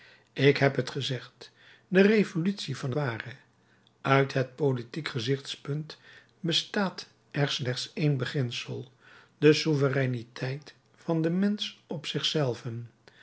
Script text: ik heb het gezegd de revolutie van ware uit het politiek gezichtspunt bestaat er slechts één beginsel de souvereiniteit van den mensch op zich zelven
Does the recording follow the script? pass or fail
pass